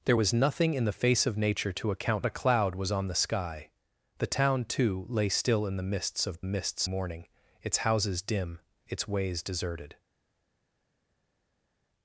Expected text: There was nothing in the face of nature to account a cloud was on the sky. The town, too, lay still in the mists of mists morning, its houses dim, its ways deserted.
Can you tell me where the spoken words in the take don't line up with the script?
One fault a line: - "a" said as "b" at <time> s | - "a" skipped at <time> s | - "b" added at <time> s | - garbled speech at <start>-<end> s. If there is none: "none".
none